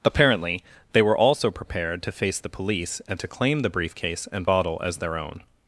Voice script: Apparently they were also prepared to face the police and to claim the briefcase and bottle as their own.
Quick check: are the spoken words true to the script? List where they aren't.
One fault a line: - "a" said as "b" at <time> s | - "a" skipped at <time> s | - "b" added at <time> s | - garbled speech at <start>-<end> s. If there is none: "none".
none